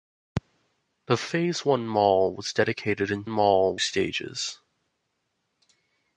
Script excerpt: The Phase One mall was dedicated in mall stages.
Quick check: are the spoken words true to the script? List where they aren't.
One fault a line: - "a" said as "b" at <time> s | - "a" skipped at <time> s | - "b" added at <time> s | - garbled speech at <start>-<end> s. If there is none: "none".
none